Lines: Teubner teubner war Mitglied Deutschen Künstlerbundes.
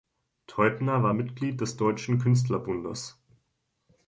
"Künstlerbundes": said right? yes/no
yes